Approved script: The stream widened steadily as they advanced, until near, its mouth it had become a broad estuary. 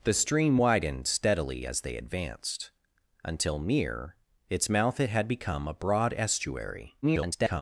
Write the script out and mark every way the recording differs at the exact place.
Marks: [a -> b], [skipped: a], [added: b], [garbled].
The stream widened steadily as they advanced, until near, its mouth it had become a broad estuary. [garbled]